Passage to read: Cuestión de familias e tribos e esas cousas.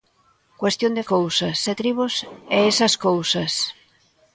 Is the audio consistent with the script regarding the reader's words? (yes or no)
no